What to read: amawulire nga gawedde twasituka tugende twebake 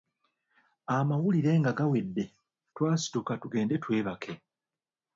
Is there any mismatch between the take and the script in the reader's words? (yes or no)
no